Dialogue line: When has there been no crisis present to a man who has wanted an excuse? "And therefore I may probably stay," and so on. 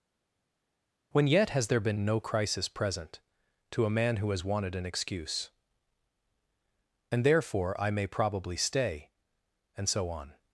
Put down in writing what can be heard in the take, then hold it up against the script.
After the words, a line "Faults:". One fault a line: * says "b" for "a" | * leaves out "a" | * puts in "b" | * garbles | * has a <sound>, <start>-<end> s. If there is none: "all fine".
When yet has there been no crisis present to a man who has wanted an excuse? "And therefore I may probably stay," and so on.
Faults:
* puts in "yet"